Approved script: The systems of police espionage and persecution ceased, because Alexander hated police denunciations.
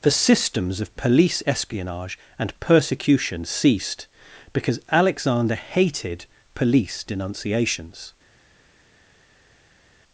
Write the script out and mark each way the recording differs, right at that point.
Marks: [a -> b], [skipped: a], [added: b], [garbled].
The systems of police espionage and persecution ceased, because Alexander hated police denunciations.